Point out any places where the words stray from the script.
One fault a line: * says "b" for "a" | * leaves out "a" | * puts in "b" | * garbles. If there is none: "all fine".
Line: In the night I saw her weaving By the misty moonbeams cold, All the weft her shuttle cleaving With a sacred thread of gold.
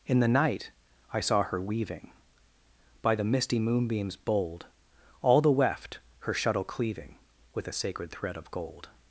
* says "bold" for "cold"